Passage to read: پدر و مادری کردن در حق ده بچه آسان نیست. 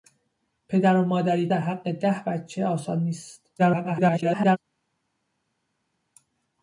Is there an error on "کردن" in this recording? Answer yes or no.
yes